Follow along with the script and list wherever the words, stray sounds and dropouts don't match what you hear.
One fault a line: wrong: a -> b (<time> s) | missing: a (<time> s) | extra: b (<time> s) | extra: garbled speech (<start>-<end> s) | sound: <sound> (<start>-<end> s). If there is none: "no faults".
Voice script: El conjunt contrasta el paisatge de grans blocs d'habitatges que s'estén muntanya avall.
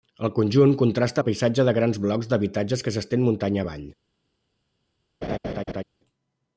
sound: laugh (5.2-5.8 s)